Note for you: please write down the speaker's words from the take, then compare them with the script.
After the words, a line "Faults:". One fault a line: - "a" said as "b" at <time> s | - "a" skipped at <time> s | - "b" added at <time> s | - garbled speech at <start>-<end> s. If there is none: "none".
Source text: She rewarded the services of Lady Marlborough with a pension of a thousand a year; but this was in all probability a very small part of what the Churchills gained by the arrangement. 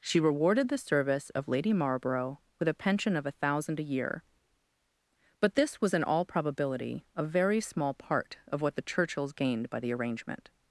She rewarded the service of Lady Marlborough with a pension of a thousand a year; but this was in all probability a very small part of what the Churchills gained by the arrangement.
Faults:
- "services" said as "service" at 0.8 s